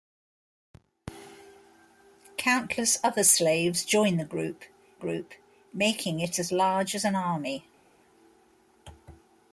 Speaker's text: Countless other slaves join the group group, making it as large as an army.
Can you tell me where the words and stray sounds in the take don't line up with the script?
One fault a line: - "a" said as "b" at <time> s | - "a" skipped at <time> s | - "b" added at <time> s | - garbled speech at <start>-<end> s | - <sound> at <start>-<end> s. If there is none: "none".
none